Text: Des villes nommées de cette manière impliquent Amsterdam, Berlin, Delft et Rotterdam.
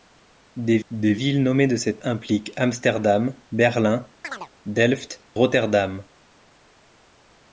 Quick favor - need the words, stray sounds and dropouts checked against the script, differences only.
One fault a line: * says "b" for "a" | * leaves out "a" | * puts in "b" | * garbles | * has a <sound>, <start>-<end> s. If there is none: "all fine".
* puts in "des"
* leaves out "manière"
* has a chirp, 4.2-4.5 s
* leaves out "et"